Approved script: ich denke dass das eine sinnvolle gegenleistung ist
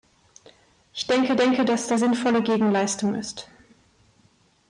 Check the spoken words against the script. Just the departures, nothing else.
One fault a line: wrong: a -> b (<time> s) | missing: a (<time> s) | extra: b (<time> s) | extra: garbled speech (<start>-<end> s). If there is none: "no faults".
extra: denke (1.4 s)
missing: eine (2.0 s)